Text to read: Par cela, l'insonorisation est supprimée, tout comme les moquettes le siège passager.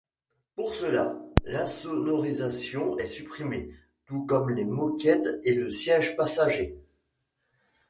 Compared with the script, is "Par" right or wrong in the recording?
wrong